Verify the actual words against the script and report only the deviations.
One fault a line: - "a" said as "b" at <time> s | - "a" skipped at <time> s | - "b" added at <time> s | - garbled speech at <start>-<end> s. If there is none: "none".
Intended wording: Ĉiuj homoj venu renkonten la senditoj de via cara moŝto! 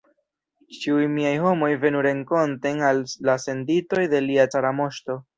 - "miaj" added at 1.2 s
- "al" added at 2.9 s
- "via" said as "lia" at 4.3 s